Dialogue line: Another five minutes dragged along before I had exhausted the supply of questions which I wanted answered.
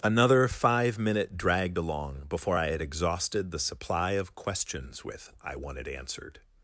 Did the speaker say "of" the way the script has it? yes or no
yes